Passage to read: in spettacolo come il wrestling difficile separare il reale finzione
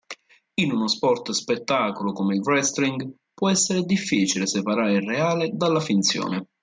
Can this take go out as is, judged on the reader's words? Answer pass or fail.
fail